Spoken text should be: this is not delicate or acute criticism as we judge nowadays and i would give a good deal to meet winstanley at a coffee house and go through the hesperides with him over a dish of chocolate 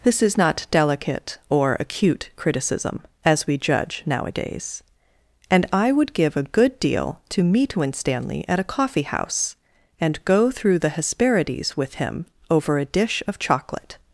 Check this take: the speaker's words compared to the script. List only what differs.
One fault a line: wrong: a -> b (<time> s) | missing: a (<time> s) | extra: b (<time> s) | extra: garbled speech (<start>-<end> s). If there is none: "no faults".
no faults